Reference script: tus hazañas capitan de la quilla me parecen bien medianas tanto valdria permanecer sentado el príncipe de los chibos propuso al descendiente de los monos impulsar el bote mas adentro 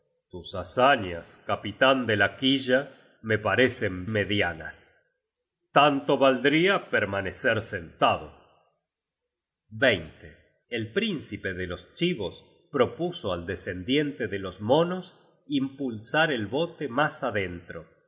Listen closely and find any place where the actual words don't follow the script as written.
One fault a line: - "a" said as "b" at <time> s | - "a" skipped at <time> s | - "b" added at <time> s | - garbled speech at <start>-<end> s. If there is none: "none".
- "bien" skipped at 4.1 s